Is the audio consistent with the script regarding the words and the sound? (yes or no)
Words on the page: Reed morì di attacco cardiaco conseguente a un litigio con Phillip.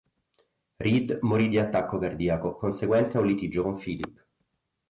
yes